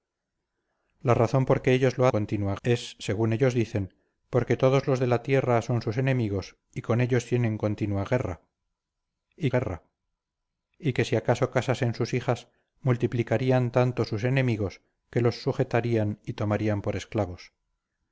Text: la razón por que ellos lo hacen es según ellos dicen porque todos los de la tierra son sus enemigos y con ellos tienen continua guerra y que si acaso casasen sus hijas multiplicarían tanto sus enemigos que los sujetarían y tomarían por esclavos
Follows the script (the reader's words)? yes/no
no